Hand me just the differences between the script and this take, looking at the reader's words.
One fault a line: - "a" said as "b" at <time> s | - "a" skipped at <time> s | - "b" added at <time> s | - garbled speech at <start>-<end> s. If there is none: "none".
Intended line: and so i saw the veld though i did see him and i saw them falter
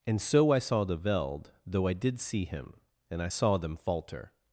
none